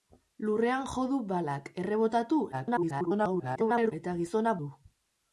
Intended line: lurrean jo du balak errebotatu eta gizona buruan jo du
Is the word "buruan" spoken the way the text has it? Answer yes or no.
no